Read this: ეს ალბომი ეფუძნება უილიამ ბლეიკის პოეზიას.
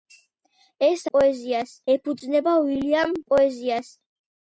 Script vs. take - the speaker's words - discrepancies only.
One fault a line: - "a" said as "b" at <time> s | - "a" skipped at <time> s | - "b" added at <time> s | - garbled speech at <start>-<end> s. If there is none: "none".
- "ალბომი" said as "პოეზიას" at 1.1 s
- "ბლეიკის" skipped at 3.2 s